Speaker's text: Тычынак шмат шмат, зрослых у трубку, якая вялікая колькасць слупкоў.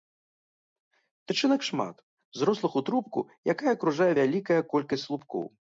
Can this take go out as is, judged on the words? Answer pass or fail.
fail